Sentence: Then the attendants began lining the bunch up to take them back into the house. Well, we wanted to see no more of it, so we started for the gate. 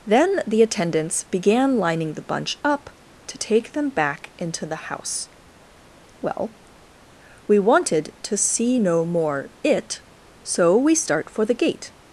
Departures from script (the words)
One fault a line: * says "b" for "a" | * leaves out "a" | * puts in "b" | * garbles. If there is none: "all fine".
* leaves out "of"
* says "start" for "started"